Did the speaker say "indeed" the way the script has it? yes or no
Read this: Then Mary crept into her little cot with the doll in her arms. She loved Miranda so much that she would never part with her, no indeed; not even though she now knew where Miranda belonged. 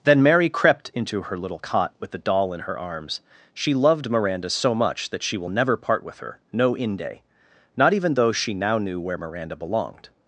no